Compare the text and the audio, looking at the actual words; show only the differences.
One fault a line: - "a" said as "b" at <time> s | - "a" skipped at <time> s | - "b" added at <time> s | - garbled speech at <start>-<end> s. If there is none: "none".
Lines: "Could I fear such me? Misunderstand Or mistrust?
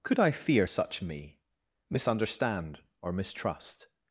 none